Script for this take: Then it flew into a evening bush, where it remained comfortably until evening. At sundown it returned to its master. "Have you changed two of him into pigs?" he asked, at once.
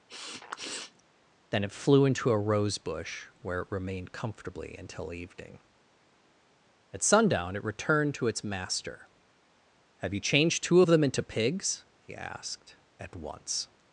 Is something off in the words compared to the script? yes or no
yes